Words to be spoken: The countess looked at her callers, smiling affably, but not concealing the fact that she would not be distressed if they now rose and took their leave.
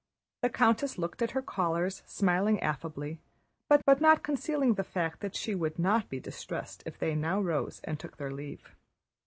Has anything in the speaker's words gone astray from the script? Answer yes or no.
yes